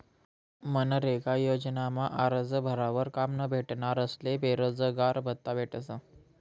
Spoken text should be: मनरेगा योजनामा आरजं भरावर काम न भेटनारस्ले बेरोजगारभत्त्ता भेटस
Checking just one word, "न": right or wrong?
right